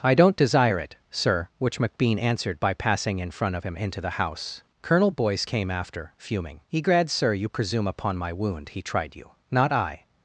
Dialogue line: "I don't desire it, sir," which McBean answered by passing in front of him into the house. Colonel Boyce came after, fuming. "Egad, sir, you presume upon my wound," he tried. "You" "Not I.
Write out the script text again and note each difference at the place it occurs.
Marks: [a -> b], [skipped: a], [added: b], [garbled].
"I don't desire it, sir," which McBean answered by passing in front of him into the house. Colonel Boyce came after, fuming. "Egad, sir, you presume upon my wound," he tried. "You" "Not I.